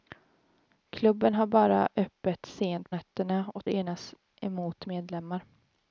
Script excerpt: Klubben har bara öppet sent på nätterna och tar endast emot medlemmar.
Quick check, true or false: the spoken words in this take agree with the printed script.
false